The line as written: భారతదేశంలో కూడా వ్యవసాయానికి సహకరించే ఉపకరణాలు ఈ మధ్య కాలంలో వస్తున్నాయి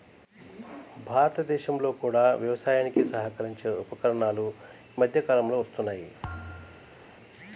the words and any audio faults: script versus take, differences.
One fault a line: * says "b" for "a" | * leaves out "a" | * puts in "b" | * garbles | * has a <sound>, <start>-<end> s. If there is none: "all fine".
* leaves out "ఈ"
* has a thud, 6.2-7.0 s